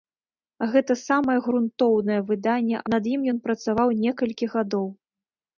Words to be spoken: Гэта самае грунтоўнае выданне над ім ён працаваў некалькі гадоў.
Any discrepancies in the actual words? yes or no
no